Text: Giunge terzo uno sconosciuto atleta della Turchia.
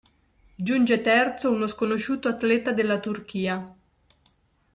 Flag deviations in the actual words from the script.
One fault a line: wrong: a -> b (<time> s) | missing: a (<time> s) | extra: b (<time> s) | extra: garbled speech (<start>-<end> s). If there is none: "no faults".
no faults